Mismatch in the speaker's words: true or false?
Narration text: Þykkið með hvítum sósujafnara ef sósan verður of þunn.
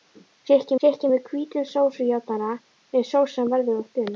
true